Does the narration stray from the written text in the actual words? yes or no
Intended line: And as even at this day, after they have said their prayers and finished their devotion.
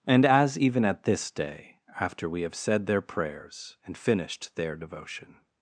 yes